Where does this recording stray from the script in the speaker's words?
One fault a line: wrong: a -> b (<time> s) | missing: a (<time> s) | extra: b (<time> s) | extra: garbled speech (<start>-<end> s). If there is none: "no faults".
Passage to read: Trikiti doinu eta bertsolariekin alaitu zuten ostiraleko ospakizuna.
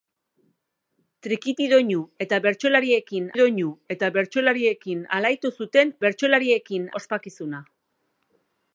extra: doinu eta bertsolariekin (3.4 s)
wrong: ostiraleko -> bertsolariekin (6.0 s)